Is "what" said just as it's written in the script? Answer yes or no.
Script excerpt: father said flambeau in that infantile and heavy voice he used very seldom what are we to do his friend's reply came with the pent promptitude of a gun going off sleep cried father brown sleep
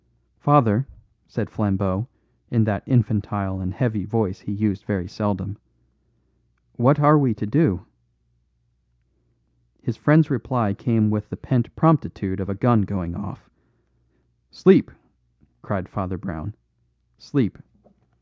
yes